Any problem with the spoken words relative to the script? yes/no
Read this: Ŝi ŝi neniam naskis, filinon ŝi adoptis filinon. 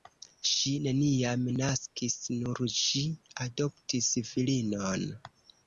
yes